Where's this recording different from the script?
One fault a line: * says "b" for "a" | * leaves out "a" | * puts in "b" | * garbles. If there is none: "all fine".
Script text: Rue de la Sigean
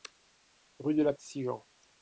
all fine